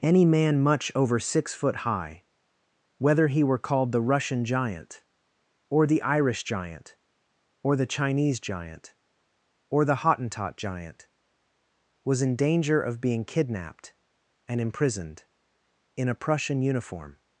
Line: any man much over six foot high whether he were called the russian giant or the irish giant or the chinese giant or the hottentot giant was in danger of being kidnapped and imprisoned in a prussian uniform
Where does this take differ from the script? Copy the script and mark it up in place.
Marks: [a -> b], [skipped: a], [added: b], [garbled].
any man much over six foot high whether he were called the russian giant or the irish giant or the chinese giant or the hottentot giant was in danger of being kidnapped and imprisoned in a prussian uniform